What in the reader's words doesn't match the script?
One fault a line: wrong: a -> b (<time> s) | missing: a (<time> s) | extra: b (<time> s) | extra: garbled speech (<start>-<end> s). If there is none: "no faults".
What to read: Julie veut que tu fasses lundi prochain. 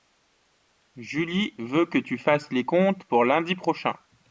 extra: les comptes pour (2.5 s)